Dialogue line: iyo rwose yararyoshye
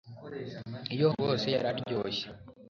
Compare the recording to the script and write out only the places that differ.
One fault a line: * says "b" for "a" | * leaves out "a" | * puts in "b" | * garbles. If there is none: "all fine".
all fine